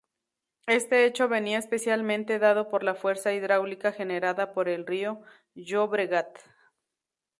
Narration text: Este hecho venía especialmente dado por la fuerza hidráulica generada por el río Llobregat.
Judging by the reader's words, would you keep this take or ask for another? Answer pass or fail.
pass